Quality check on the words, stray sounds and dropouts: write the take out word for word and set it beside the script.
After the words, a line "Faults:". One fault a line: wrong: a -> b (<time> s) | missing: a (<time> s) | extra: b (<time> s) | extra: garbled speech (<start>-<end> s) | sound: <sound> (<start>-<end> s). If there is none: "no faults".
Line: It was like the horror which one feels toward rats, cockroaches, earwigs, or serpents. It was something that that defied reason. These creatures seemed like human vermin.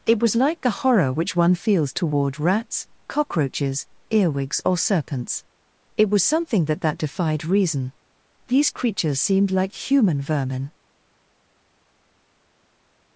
It was like the horror which one feels toward rats, cockroaches, earwigs, or serpents. It was something that that defied reason. These creatures seemed like human vermin.
Faults:
no faults